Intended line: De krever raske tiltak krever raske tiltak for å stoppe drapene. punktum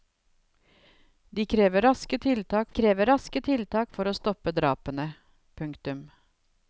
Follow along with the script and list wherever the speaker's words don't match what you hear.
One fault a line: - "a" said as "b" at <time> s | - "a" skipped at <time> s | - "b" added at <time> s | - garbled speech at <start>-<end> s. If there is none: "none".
none